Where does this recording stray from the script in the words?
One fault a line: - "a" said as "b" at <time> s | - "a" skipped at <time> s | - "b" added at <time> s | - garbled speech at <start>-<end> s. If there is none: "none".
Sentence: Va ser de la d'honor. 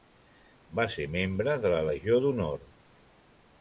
- "membre" added at 1.2 s
- "legió" added at 1.9 s